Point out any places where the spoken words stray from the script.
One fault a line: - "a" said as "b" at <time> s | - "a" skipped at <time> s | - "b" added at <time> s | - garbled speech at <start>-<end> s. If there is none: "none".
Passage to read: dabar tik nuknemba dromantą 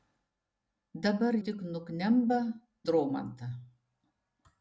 none